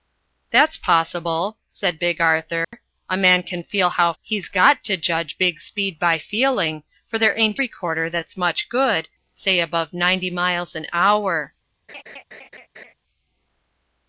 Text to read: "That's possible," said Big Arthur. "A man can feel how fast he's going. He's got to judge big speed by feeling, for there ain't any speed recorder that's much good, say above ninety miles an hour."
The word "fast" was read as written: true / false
false